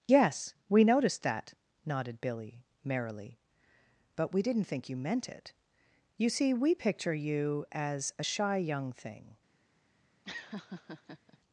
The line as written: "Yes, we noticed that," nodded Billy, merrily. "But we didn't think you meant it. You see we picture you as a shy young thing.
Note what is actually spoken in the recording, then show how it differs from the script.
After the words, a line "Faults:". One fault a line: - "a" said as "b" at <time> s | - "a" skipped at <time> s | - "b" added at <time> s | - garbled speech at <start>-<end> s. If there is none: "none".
"Yes, we noticed that," nodded Billy, merrily. "But we didn't think you meant it. You see we picture you as a shy young thing.
Faults:
none